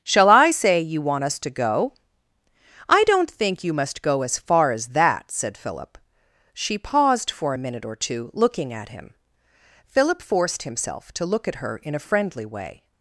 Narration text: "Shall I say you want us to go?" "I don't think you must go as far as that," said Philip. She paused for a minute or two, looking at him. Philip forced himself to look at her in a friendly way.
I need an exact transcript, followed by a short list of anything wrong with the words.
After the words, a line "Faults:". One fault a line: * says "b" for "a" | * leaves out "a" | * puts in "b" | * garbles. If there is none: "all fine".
"Shall I say you want us to go?" "I don't think you must go as far as that," said Philip. She paused for a minute or two, looking at him. Philip forced himself to look at her in a friendly way.
Faults:
all fine